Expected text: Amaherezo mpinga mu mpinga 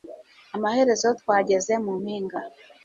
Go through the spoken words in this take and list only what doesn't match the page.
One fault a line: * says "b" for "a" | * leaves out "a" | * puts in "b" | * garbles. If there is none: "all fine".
* says "twageze" for "mpinga"